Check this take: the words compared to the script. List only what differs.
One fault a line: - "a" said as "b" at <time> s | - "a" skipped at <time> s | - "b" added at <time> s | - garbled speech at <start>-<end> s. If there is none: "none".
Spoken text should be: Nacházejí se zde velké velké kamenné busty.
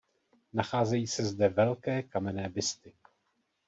- "velké" skipped at 2.0 s